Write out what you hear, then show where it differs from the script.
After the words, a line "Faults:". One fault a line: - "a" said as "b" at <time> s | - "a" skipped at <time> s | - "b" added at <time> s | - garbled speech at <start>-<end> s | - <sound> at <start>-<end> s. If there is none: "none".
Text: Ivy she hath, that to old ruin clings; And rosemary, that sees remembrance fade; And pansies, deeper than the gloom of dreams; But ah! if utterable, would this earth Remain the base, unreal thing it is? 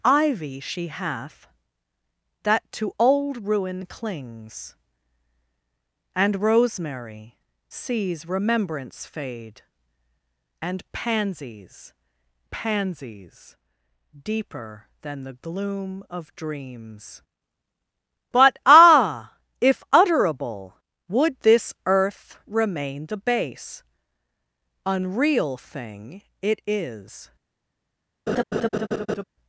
Ivy she hath, that to old ruin clings; And rosemary, sees remembrance fade; And pansies pansies, deeper than the gloom of dreams; But ah! if utterable, would this earth Remain the base, unreal thing it is?
Faults:
- "that" skipped at 7.4 s
- "pansies" added at 12.5 s
- laugh at 28.3-29.2 s